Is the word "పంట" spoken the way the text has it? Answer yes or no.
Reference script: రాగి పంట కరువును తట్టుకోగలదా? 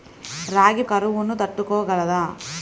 no